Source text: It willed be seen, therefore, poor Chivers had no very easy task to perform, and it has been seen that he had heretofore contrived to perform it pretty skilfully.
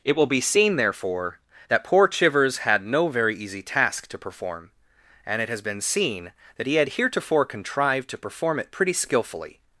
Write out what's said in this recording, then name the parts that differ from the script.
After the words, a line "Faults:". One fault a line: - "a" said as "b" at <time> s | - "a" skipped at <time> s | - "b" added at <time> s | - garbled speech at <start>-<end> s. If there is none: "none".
It will be seen, therefore, that poor Chivers had no very easy task to perform, and it has been seen that he had heretofore contrived to perform it pretty skilfully.
Faults:
- "willed" said as "will" at 0.1 s
- "that" added at 1.7 s